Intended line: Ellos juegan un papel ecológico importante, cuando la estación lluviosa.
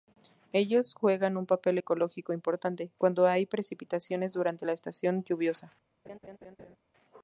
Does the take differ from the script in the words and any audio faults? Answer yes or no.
yes